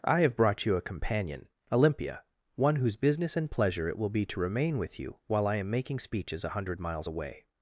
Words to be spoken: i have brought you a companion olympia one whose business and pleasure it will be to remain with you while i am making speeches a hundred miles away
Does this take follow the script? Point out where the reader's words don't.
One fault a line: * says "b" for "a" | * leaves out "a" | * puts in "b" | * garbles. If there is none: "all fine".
all fine